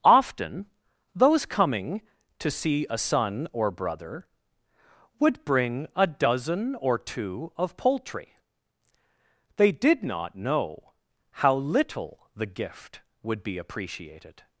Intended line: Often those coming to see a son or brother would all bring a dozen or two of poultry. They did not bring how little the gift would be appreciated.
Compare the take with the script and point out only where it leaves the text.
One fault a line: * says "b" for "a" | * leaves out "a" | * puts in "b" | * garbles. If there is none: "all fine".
* leaves out "all"
* says "know" for "bring"